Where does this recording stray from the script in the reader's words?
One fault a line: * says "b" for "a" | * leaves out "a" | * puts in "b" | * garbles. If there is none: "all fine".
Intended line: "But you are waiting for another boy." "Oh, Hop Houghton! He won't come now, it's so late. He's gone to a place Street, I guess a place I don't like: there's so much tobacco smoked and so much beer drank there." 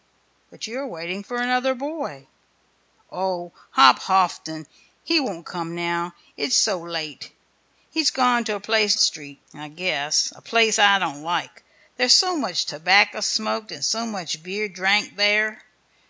all fine